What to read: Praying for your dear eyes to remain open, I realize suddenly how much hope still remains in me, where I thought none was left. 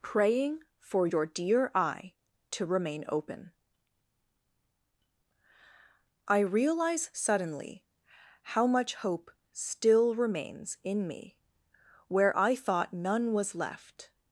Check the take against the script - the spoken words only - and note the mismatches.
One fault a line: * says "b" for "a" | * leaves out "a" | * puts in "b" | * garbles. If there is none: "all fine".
* says "eye" for "eyes"